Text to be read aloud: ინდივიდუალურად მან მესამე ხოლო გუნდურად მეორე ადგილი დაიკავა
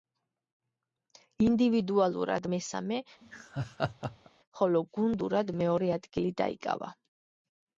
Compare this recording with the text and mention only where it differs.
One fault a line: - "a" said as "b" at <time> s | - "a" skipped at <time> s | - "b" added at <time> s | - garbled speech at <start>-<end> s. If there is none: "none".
- "მან" skipped at 2.5 s